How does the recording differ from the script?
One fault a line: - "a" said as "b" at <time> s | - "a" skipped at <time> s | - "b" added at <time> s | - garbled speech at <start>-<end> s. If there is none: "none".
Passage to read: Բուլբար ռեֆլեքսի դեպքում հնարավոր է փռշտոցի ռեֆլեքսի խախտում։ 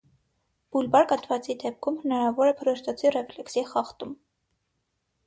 - "ռեֆլեքսի" said as "կաթվածի" at 1.1 s